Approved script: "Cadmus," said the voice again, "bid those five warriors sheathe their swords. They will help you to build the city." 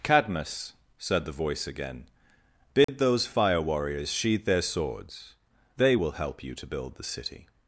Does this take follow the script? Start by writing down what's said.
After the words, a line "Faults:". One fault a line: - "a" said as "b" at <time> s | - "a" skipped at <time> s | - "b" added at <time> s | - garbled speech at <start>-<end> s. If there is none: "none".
"Cadmus," said the voice again, "bid those fire warriors sheathe their swords. They will help you to build the city."
Faults:
- "five" said as "fire" at 3.3 s